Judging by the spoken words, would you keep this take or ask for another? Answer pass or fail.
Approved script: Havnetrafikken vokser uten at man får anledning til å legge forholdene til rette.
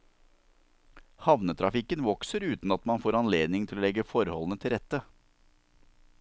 pass